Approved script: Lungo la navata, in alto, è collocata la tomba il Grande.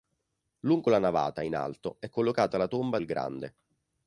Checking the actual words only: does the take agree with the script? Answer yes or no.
yes